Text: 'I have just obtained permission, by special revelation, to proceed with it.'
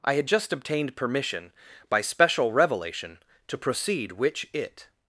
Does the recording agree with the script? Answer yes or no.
no